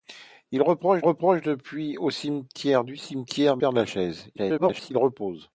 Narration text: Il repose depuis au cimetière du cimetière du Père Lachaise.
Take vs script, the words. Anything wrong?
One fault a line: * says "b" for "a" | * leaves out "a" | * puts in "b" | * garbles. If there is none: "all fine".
* puts in "repose"
* leaves out "du"
* garbles